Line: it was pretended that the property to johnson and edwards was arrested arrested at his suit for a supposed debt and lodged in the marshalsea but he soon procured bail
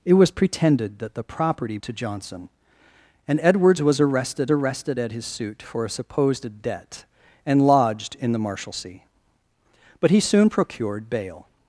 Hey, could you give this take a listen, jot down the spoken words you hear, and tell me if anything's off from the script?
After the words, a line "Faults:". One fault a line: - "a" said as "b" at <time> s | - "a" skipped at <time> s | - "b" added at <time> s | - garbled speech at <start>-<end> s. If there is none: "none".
it was pretended that the property to johnson and edwards was arrested arrested at his suit for a supposed debt and lodged in the marshalsea but he soon procured bail
Faults:
none